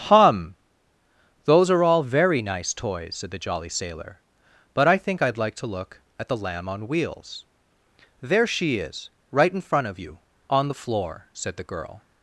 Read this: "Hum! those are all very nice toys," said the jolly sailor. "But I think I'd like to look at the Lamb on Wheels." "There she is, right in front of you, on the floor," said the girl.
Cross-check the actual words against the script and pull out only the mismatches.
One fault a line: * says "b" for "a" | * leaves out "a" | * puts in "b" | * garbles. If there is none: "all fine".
all fine